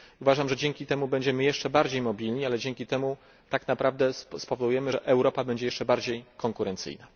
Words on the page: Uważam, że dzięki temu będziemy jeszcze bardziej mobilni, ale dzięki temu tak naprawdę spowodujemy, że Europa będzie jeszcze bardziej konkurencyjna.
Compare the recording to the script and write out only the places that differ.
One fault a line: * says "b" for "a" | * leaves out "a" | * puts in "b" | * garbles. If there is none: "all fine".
all fine